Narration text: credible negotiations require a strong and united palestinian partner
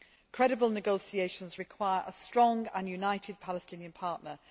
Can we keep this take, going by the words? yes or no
yes